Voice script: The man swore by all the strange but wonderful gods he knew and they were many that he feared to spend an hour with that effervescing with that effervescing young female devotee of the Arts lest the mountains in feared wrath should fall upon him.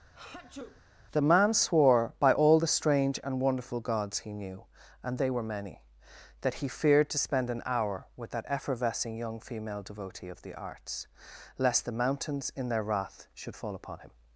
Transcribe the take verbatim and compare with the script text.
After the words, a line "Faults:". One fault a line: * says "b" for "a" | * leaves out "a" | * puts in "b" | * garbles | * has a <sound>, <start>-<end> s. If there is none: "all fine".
The man swore by all the strange and wonderful gods he knew and they were many that he feared to spend an hour with that effervescing young female devotee of the Arts lest the mountains in their wrath should fall upon him.
Faults:
* has a sneeze, 0.1-0.8 s
* says "and" for "but"
* leaves out "with that effervescing"
* says "their" for "feared"